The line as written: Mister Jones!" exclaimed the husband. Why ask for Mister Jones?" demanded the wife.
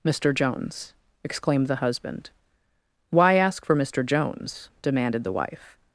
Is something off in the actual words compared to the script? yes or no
no